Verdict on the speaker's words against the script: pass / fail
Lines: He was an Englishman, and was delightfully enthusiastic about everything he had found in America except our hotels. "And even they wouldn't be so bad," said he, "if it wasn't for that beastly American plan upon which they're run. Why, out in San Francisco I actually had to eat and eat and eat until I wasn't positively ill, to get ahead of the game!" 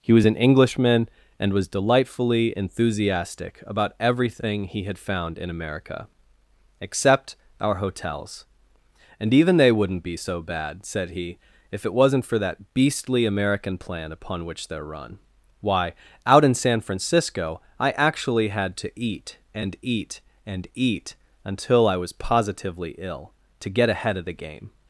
fail